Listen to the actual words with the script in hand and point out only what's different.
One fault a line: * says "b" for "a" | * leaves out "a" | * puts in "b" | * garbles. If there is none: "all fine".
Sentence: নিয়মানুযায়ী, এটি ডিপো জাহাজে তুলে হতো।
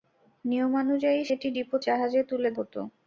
all fine